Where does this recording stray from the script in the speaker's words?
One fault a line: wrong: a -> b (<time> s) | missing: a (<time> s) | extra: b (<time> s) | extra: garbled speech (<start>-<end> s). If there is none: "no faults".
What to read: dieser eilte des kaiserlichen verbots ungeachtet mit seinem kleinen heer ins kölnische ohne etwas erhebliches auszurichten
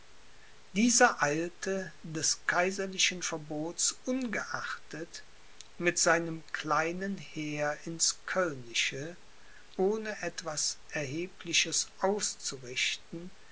no faults